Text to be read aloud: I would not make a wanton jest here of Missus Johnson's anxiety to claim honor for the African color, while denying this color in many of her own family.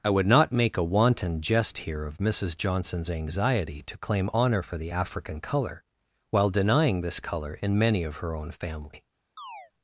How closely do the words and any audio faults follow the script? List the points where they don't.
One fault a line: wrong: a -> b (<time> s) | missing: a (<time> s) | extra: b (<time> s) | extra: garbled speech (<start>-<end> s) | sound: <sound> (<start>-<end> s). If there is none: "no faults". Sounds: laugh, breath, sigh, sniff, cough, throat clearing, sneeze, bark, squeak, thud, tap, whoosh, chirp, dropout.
sound: chirp (9.4-9.7 s)